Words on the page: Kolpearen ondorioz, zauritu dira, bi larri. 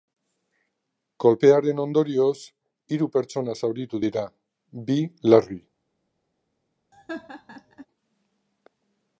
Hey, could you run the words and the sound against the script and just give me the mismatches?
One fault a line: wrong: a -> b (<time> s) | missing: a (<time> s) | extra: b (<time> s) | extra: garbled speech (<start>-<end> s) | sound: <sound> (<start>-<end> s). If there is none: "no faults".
extra: hiru pertsona (3.0 s)
sound: laugh (6.9-7.9 s)